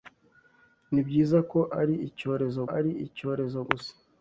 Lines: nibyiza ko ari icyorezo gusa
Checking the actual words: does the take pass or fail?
fail